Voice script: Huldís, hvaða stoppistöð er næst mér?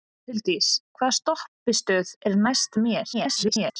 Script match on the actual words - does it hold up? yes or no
no